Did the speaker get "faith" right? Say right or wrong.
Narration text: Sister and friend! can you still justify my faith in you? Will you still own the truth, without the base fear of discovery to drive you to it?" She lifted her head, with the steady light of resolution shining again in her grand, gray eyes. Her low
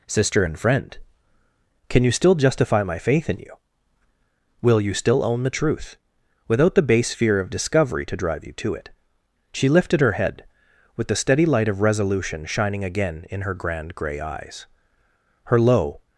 right